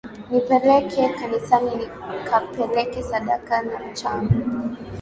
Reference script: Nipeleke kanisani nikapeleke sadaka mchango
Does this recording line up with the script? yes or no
no